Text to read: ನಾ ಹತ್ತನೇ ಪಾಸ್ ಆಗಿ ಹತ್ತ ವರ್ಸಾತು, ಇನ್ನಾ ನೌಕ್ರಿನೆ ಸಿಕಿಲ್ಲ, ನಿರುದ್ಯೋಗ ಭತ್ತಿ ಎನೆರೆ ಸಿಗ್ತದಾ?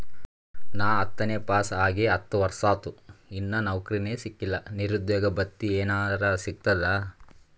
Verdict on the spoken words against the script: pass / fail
pass